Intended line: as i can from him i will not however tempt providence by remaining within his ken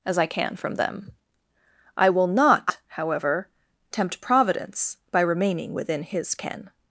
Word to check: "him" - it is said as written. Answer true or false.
false